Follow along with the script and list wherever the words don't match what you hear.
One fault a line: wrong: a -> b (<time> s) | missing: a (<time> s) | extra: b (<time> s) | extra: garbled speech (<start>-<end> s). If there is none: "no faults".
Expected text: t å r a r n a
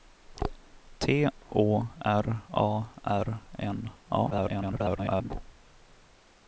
extra: garbled speech (4.3-5.3 s)